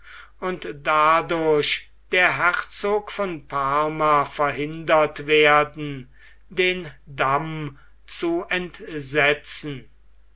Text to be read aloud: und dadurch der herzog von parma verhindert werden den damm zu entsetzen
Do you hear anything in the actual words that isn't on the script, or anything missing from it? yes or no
no